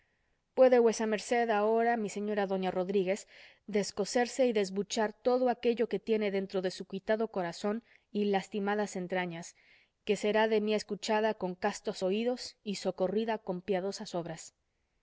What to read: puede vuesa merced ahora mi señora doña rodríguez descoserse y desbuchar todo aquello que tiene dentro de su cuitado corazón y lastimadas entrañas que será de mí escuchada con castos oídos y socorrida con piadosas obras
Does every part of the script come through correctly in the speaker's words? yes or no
yes